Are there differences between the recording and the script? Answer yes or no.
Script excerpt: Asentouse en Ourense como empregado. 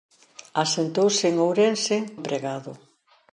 yes